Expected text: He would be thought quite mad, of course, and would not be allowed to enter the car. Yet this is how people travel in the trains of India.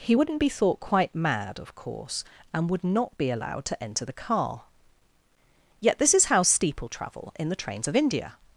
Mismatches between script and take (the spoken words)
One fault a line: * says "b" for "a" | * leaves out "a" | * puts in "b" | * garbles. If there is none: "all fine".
* says "wouldn't" for "would"
* says "steeple" for "people"